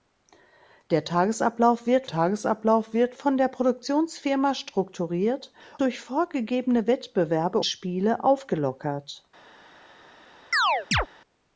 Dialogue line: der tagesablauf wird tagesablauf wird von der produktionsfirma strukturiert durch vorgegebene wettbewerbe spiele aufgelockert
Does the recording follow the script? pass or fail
pass